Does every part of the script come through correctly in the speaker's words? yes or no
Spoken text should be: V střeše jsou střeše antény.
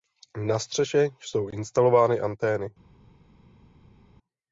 no